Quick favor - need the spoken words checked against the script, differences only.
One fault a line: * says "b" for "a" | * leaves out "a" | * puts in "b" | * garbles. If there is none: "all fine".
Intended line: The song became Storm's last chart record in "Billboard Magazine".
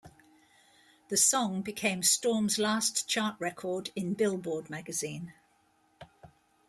all fine